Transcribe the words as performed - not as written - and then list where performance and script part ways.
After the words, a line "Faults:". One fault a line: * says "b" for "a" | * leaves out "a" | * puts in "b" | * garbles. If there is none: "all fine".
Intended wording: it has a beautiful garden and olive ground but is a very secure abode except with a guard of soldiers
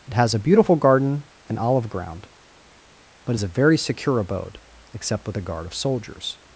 it has a beautiful garden and olive ground but is a very secure abode except with a guard of soldiers
Faults:
all fine